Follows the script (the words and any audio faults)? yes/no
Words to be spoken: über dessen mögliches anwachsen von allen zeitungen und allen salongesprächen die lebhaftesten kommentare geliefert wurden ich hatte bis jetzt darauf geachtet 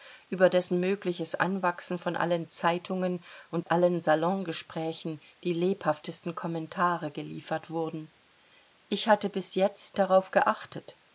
no